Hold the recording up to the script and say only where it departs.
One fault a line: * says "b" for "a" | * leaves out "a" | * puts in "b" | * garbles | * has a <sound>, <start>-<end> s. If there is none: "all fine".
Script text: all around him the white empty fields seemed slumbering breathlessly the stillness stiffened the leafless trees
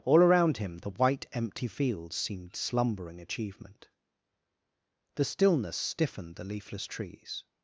* says "achievement" for "breathlessly"